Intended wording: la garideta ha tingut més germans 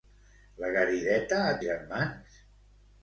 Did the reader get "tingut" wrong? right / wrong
wrong